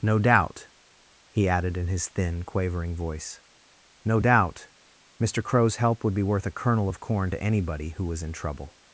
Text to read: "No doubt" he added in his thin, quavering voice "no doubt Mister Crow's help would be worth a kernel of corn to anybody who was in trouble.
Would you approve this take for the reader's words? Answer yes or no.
yes